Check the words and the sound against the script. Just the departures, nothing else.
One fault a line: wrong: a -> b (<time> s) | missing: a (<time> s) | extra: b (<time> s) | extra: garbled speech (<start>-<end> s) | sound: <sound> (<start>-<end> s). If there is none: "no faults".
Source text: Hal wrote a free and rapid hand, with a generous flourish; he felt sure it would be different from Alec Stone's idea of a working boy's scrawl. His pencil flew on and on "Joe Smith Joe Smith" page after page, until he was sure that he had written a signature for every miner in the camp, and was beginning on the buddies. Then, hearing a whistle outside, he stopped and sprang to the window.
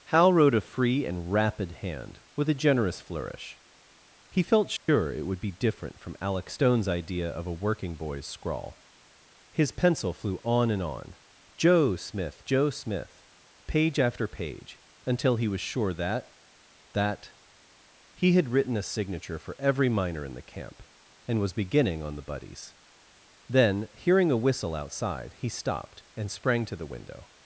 sound: dropout (4.8-4.9 s)
extra: that (16.9 s)